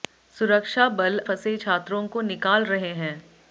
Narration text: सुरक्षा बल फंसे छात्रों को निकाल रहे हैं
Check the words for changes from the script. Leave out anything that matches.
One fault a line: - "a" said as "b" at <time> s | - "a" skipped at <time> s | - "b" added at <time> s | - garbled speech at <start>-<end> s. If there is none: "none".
none